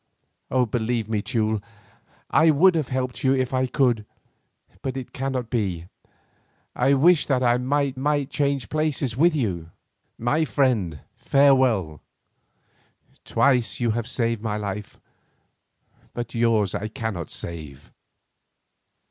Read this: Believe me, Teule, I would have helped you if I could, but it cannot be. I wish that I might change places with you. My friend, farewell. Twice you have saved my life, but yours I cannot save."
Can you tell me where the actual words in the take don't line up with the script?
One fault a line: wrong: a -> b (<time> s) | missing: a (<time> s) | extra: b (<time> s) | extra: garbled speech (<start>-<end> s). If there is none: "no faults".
extra: might (7.9 s)